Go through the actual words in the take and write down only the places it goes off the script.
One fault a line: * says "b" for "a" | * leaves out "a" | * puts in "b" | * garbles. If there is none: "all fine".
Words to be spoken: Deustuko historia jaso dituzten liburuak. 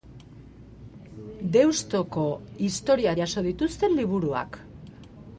all fine